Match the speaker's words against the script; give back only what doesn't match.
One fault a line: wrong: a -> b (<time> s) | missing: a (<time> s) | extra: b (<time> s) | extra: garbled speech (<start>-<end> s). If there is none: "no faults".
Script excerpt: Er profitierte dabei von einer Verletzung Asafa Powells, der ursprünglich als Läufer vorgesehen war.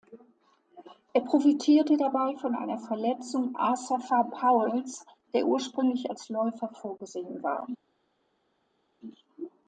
no faults